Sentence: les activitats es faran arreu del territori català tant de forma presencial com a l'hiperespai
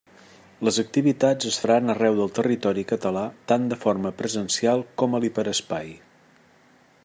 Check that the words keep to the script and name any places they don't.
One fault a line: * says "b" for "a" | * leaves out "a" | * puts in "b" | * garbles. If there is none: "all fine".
all fine